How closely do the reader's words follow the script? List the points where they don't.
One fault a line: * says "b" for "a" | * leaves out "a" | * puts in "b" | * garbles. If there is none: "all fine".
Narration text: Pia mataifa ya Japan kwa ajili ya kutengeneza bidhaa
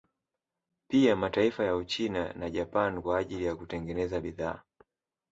* puts in "Uchina na"